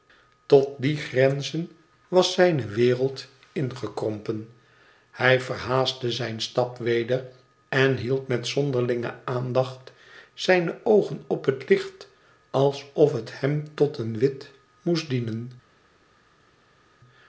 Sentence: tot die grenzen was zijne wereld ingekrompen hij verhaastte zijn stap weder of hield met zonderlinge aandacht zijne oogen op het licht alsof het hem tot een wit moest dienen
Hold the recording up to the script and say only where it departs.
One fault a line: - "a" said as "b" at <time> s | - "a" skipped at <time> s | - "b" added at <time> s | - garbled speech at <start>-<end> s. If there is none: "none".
- "of" said as "en" at 7.7 s